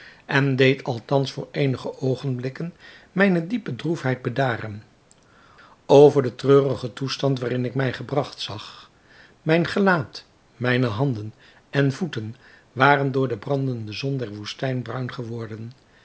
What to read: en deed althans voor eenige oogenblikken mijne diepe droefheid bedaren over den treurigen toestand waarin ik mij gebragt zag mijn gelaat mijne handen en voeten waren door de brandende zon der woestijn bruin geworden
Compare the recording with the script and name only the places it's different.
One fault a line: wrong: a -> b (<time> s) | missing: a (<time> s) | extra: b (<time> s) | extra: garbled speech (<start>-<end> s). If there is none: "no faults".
no faults